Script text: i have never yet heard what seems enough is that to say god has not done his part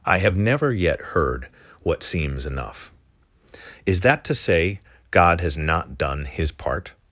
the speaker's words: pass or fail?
pass